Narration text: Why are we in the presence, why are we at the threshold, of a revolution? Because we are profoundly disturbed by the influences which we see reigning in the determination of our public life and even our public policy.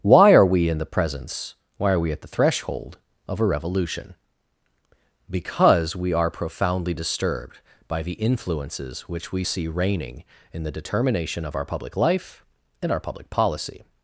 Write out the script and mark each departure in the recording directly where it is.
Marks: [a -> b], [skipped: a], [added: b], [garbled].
Why are we in the presence, why are we at the threshold, of a revolution? Because we are profoundly disturbed by the influences which we see reigning in the determination of our public life and [skipped: even] our public policy.